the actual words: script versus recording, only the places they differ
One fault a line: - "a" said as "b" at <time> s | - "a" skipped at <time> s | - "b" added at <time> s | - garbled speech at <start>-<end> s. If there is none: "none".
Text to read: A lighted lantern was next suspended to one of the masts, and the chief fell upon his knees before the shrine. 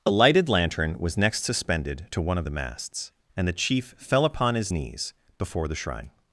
none